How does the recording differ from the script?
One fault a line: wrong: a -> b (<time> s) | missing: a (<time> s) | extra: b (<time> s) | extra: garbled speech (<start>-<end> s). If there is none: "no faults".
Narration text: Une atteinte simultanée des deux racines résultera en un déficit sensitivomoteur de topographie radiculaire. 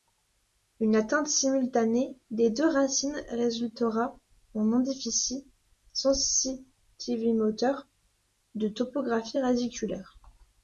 no faults